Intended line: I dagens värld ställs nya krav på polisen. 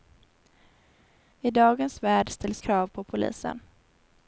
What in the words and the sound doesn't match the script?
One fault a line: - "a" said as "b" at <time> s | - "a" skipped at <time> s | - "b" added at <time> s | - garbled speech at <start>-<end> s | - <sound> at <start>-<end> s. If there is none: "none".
- "nya" skipped at 2.6 s